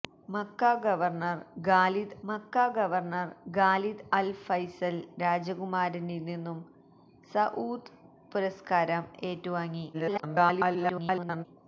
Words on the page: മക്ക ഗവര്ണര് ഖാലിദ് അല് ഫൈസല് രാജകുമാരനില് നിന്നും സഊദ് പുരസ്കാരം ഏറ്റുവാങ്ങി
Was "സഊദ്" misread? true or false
false